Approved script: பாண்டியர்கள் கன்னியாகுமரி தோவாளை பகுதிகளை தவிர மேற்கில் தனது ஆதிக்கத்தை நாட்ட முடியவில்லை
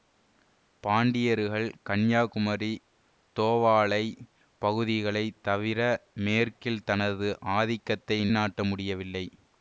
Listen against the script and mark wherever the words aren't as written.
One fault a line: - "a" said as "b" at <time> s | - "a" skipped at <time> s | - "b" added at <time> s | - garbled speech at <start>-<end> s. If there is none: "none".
none